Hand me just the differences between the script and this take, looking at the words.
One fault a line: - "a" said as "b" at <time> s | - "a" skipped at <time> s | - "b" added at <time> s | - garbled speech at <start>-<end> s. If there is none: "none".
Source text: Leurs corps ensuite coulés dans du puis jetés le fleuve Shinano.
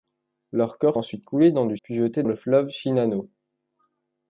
none